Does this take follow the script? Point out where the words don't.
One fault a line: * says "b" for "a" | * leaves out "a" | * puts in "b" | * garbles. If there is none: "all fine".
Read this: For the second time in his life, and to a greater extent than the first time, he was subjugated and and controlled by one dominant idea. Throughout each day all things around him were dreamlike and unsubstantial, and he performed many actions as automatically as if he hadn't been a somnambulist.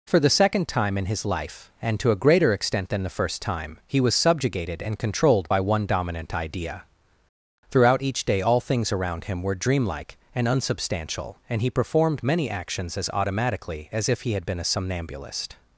* leaves out "and"
* says "had" for "hadn't"